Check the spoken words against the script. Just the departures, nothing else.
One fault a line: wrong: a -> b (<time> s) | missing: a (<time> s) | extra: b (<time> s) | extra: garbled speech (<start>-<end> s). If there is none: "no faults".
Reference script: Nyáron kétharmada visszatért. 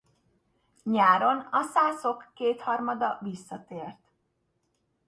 extra: a szászok (1.4 s)